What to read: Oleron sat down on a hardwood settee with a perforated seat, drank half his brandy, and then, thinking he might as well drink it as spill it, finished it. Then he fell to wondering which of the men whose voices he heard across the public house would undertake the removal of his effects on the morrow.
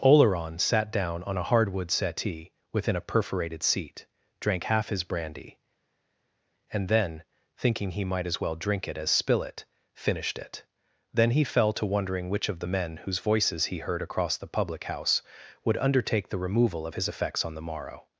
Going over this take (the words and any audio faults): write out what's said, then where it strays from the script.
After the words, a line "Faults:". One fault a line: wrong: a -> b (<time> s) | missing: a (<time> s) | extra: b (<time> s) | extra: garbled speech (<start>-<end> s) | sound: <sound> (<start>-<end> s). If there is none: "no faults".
Oleron sat down on a hardwood settee within a perforated seat, drank half his brandy, and then, thinking he might as well drink it as spill it, finished it. Then he fell to wondering which of the men whose voices he heard across the public house would undertake the removal of his effects on the morrow.
Faults:
wrong: with -> within (2.7 s)